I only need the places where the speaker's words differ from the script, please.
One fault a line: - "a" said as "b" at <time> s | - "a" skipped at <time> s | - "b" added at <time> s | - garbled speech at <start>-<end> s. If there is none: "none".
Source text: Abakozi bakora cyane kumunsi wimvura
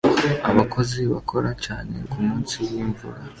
none